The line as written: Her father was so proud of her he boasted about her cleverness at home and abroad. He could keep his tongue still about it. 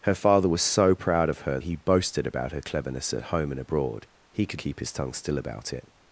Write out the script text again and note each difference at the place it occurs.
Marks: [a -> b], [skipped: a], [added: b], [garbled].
Her father was so proud of her he boasted about her cleverness at home and abroad. He could keep his tongue still about it.